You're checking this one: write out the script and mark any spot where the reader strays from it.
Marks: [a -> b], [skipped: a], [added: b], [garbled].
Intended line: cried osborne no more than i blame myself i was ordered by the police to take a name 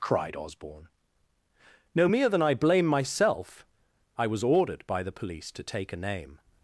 cried osborne no [more -> mere] than i blame myself i was ordered by the police to take a name